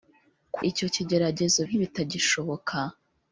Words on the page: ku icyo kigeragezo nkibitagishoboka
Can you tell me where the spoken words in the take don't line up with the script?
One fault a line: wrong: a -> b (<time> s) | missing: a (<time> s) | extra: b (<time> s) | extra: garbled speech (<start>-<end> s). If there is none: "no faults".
no faults